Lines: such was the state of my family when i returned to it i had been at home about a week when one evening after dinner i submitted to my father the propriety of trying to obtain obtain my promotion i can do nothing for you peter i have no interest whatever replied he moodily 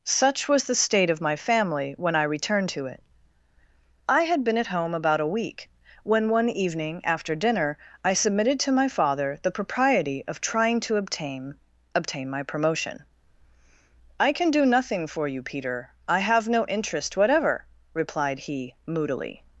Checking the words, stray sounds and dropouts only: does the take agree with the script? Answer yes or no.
yes